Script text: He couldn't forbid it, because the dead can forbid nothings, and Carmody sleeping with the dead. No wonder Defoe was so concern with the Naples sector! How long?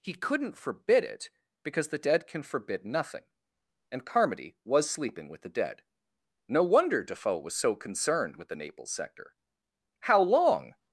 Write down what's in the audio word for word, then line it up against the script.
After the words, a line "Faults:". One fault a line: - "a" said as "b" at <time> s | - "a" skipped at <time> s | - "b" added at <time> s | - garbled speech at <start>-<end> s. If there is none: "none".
He couldn't forbid it, because the dead can forbid nothing, and Carmody was sleeping with the dead. No wonder Defoe was so concerned with the Naples sector! How long?
Faults:
- "nothings" said as "nothing" at 2.9 s
- "was" added at 4.7 s
- "concern" said as "concerned" at 7.8 s